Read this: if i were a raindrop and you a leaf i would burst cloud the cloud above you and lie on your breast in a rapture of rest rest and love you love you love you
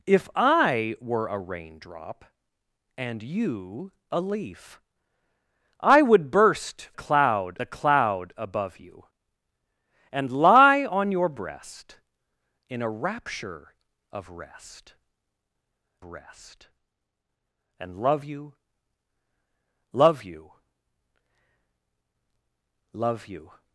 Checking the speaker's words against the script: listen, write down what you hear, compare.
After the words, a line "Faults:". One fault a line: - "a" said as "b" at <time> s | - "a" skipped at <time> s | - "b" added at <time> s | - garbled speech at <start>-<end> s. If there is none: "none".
if i were a raindrop and you a leaf i would burst cloud the cloud above you and lie on your breast in a rapture of rest rest and love you love you love you
Faults:
none